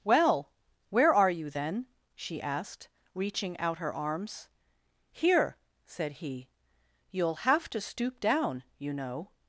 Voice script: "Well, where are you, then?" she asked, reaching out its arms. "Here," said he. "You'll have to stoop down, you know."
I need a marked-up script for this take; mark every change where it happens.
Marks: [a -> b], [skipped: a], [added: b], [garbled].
"Well, where are you, then?" she asked, reaching out [its -> her] arms. "Here," said he. "You'll have to stoop down, you know."